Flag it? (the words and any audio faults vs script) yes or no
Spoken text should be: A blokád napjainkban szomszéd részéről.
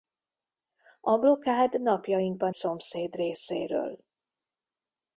no